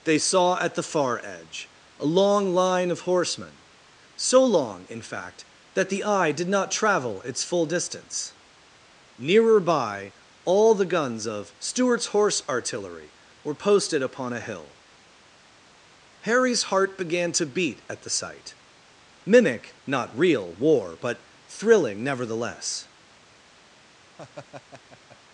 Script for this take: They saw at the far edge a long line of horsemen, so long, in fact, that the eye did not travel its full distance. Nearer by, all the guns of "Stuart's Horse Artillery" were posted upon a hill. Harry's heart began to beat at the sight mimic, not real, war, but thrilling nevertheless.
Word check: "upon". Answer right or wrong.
right